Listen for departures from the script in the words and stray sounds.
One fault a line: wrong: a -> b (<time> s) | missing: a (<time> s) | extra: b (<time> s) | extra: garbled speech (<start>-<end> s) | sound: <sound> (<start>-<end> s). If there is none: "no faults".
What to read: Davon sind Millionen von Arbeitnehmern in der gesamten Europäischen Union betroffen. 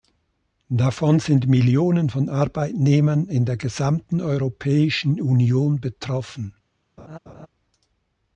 sound: laugh (7.0-7.5 s)